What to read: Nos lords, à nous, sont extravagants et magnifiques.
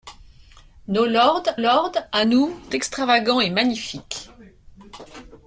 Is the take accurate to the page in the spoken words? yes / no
no